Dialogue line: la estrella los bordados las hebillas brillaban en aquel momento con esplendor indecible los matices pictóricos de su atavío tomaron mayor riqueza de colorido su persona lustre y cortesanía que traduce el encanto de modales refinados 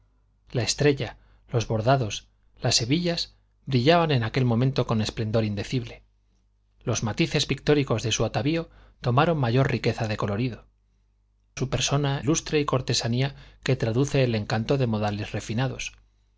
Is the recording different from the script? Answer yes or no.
no